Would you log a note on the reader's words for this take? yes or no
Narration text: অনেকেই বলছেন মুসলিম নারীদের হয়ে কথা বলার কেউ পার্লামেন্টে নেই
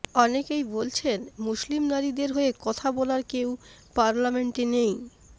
no